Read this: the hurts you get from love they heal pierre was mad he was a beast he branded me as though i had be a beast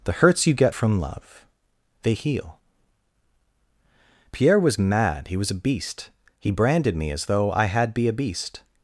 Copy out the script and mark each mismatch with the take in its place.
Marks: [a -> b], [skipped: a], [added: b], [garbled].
the hurts you get from love they heal pierre was mad he was a beast he branded me as though i had be a beast